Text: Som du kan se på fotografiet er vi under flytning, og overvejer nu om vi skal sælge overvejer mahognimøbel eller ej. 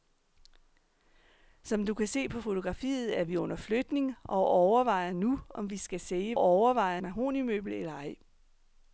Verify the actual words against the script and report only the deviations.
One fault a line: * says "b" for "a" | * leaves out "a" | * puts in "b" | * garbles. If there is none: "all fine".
all fine